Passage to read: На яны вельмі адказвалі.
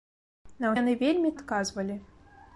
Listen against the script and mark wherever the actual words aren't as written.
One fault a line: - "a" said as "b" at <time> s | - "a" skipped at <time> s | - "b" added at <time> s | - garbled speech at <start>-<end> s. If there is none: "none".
none